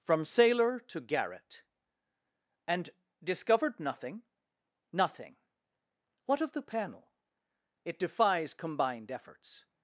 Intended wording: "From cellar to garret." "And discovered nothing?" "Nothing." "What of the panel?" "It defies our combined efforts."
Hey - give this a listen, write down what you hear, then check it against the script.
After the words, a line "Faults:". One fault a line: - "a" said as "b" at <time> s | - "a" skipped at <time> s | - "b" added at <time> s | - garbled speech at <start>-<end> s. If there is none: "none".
"From sailor to garret." "And discovered nothing?" "Nothing." "What of the panel?" "It defies combined efforts."
Faults:
- "cellar" said as "sailor" at 0.2 s
- "our" skipped at 8.5 s